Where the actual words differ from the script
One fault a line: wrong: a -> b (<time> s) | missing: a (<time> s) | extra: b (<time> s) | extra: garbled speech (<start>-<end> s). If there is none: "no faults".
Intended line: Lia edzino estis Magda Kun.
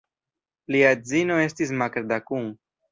no faults